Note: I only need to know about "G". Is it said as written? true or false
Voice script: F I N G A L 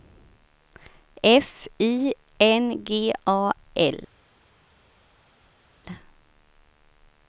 true